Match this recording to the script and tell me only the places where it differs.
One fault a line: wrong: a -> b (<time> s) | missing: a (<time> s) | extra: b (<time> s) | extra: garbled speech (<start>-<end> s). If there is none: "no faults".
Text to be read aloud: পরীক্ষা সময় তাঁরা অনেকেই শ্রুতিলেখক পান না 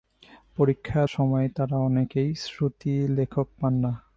no faults